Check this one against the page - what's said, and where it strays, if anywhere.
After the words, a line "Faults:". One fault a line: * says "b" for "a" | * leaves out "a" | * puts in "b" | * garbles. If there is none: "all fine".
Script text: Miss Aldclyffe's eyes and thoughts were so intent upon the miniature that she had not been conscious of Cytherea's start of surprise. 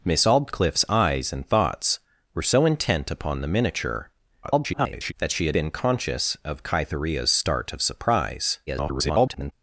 Miss Aldclyffe's eyes and thoughts were so intent upon the miniature [garbled] that she had been conscious of Cytherea's start of surprise. [garbled]
Faults:
* garbles
* leaves out "not"
* garbles